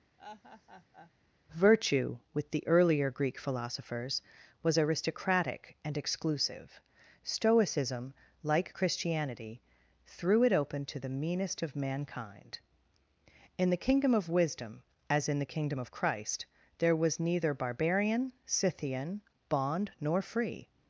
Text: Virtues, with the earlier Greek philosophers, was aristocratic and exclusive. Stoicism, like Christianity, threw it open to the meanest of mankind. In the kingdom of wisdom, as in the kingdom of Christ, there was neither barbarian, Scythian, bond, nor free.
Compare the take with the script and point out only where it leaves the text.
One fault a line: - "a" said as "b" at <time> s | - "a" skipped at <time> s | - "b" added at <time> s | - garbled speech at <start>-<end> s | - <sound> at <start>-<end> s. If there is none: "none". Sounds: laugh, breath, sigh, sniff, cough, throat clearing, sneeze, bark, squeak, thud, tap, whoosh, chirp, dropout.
- laugh at 0.2-1.1 s
- "Virtues" said as "Virtue" at 1.5 s